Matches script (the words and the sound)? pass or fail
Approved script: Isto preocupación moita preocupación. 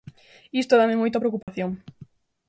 fail